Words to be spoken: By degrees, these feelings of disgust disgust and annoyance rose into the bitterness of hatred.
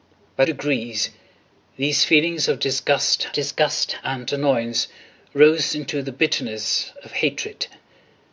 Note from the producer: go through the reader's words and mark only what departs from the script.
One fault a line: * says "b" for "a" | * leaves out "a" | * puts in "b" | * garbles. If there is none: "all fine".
all fine